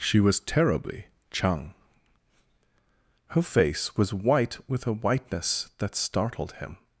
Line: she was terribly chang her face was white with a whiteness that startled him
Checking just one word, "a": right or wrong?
right